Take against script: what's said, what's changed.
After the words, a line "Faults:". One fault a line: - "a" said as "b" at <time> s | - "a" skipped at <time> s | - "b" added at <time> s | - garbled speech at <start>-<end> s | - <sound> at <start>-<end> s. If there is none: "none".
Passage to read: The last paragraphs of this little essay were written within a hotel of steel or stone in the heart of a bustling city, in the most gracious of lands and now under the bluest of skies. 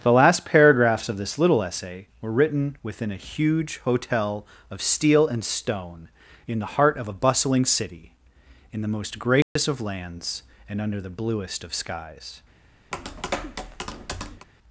The last paragraphs of this little essay were written within a huge hotel of steel and stone in the heart of a bustling city, in the most gracious of lands and under the bluest of skies.
Faults:
- "huge" added at 3.3 s
- "or" said as "and" at 5.3 s
- dropout at 9.4-9.6 s
- "now" skipped at 10.8 s
- tap at 12.9-14.5 s